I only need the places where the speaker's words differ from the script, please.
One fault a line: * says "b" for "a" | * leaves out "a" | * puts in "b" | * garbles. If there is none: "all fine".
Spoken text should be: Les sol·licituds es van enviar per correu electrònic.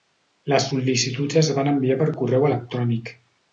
all fine